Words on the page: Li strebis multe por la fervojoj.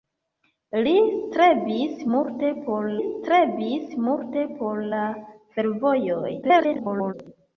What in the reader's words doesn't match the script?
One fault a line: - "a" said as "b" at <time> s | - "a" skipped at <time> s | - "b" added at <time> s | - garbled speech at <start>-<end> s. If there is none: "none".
- "strebis multe por" added at 3.0 s
- garbled speech at 6.4-7.1 s